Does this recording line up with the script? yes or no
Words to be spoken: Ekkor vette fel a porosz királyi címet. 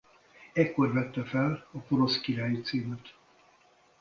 yes